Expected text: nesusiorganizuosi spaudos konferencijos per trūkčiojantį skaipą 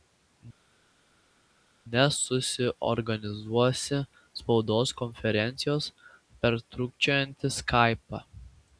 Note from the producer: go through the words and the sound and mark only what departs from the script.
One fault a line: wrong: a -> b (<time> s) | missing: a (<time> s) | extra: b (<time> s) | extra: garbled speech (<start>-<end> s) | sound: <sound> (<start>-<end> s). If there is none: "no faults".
no faults